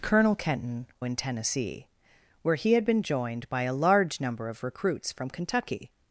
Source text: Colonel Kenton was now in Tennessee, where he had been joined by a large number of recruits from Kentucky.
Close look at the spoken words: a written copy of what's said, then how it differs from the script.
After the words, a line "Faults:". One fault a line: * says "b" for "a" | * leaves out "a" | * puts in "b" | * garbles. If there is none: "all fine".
Colonel Kenton in Tennessee, where he had been joined by a large number of recruits from Kentucky.
Faults:
* leaves out "was now"